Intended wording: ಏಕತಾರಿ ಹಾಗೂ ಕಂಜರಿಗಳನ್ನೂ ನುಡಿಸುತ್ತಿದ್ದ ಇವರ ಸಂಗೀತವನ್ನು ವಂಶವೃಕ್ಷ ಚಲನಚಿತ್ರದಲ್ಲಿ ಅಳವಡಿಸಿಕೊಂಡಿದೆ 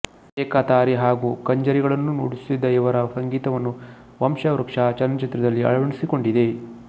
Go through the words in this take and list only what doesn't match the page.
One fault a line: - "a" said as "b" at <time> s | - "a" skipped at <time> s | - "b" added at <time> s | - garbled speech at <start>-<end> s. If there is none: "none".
none